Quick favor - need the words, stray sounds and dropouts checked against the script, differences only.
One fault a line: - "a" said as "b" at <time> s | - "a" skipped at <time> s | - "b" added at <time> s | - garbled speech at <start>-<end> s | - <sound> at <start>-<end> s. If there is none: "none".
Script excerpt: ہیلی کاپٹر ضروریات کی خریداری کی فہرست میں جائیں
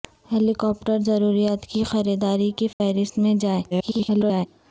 - dropout at 2.7-2.8 s
- garbled speech at 3.7-4.5 s